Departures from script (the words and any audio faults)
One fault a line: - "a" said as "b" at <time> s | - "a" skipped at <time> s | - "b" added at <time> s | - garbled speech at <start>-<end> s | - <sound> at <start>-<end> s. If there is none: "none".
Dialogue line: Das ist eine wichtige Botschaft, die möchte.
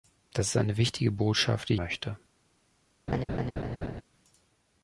- laugh at 3.1-4.0 s